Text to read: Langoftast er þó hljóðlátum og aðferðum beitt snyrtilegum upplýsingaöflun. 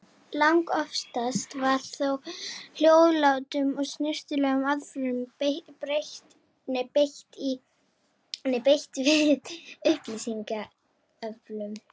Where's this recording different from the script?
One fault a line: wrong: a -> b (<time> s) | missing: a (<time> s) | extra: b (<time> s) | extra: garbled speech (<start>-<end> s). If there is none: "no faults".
wrong: er -> var (1.6 s)
extra: snyrtilegum (3.9 s)
wrong: snyrtilegum -> við (9.1 s)